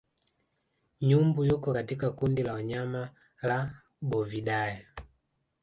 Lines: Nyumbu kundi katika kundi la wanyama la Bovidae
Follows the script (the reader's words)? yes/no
no